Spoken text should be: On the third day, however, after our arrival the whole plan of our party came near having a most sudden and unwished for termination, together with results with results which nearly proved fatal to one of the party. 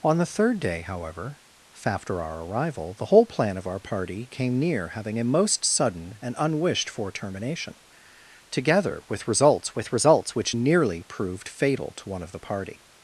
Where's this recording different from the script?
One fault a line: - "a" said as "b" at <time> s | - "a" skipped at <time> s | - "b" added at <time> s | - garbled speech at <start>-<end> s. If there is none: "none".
none